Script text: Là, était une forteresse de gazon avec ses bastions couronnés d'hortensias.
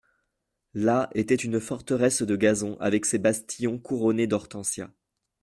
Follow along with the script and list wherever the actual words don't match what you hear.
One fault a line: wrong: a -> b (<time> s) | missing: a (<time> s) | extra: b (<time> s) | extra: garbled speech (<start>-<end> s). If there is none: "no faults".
no faults